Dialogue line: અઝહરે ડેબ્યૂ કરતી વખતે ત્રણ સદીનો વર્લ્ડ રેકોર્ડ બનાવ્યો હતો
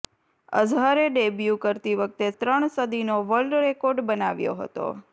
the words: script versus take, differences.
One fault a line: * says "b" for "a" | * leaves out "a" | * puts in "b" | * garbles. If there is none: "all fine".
all fine